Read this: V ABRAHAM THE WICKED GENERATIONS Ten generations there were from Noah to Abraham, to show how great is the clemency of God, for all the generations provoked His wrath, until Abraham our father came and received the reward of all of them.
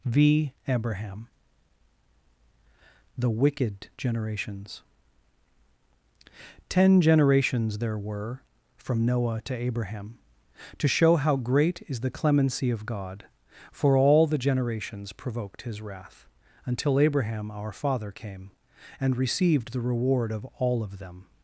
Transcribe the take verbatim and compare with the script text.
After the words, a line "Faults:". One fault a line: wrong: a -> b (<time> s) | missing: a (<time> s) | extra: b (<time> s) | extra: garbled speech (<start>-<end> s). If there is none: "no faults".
V ABRAHAM THE WICKED GENERATIONS Ten generations there were from Noah to Abraham, to show how great is the clemency of God, for all the generations provoked His wrath, until Abraham our father came and received the reward of all of them.
Faults:
no faults